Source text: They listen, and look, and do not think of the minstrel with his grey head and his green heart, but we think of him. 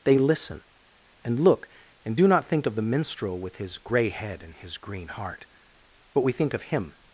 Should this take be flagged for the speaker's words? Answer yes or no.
no